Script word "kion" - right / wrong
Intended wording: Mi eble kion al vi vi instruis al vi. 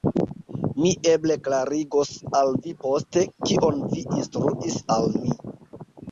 wrong